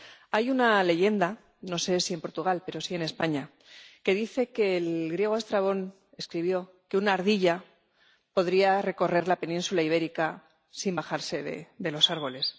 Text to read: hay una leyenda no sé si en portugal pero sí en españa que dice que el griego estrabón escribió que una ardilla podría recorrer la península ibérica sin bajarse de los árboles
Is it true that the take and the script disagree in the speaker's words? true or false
false